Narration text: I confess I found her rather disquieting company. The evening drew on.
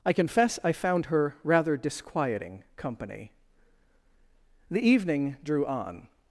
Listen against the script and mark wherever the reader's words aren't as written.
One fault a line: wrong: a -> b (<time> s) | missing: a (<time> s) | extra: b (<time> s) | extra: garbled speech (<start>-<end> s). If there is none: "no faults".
no faults